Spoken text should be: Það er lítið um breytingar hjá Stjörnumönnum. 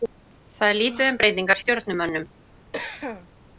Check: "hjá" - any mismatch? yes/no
yes